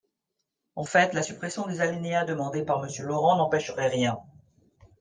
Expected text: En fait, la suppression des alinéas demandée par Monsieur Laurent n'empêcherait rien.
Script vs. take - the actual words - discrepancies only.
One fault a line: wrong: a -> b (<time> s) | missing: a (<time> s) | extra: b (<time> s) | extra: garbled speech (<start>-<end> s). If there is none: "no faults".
no faults